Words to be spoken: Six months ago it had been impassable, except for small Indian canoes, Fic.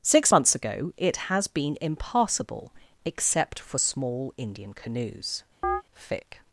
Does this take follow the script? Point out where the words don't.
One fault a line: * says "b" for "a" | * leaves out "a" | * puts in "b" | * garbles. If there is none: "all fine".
* says "has" for "had"